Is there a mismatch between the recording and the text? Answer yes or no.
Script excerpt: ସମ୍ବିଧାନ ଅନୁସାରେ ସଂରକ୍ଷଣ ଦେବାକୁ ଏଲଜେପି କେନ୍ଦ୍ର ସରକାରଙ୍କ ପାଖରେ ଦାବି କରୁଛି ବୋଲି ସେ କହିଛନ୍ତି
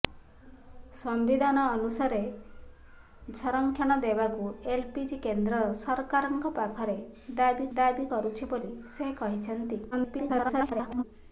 yes